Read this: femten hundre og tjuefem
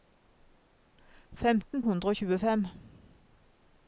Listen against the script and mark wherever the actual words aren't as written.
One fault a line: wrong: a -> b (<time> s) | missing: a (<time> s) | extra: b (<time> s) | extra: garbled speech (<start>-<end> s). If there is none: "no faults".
no faults